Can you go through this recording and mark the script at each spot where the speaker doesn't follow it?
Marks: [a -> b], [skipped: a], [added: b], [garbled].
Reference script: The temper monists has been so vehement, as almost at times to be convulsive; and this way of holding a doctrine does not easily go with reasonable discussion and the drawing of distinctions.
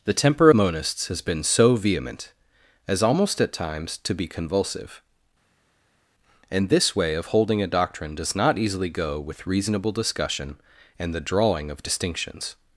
The temper monists has been so vehement, as almost at times to be convulsive; and this way of holding a doctrine does not easily go with reasonable discussion and the drawing of distinctions.